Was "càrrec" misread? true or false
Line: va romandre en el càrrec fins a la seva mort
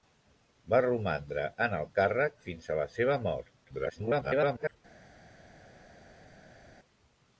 false